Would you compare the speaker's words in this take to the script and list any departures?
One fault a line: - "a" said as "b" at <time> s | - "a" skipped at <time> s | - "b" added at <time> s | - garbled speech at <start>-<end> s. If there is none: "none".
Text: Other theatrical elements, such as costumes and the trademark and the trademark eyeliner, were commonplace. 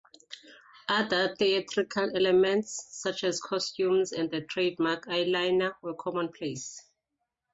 - "and the trademark" skipped at 5.1 s